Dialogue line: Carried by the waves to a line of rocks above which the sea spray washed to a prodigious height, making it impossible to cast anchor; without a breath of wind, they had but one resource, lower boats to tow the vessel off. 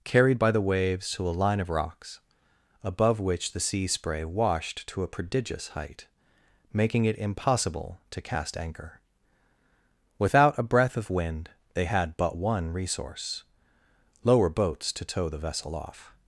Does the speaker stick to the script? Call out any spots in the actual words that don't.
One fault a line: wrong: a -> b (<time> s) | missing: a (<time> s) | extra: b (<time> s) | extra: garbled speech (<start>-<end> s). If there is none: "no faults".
no faults